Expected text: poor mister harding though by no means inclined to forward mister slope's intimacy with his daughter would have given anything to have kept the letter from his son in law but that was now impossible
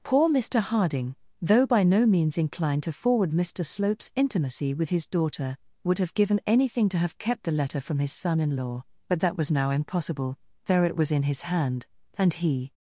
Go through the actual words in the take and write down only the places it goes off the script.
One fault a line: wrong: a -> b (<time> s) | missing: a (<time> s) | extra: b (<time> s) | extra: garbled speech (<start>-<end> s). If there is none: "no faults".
extra: there it was in his hand and he (10.7 s)